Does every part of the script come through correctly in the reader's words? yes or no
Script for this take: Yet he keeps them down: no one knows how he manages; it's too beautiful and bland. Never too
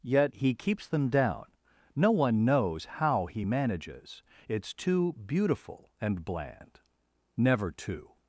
yes